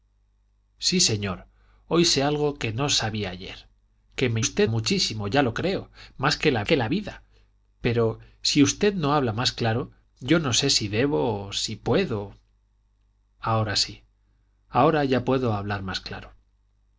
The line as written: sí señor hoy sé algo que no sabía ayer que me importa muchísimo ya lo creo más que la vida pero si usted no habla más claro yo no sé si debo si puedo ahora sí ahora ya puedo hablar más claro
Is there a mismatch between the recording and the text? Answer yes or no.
yes